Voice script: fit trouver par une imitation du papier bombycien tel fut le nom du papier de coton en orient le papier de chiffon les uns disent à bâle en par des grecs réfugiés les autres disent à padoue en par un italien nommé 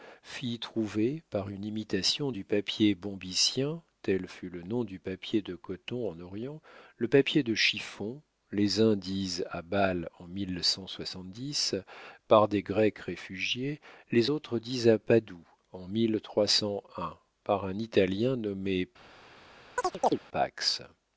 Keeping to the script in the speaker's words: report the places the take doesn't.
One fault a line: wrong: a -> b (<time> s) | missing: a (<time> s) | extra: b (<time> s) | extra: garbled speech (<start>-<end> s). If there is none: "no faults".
no faults